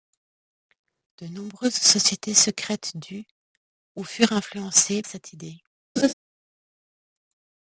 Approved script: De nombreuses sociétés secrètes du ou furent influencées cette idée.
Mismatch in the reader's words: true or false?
false